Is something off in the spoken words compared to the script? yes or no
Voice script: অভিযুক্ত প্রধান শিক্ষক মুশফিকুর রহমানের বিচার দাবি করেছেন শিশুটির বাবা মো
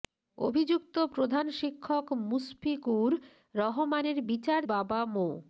yes